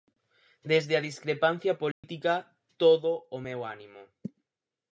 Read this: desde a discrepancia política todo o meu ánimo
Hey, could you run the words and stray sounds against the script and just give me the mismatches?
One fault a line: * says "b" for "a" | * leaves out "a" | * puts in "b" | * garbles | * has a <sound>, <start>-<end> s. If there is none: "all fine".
* has a dropout, 1.9-2.0 s